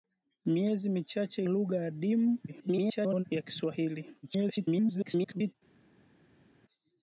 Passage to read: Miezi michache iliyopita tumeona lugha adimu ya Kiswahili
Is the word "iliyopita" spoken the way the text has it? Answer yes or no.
no